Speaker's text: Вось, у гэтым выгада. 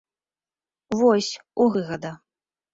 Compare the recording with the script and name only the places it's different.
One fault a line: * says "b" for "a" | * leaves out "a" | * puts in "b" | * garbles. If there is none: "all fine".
* leaves out "гэтым"